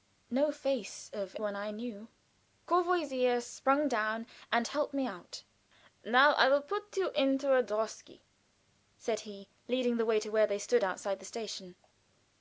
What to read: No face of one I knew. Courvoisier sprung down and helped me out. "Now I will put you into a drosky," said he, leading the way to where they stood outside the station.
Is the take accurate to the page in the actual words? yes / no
yes